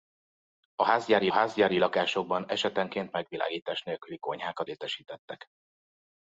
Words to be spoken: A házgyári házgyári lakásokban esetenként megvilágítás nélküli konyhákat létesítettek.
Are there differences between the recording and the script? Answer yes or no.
no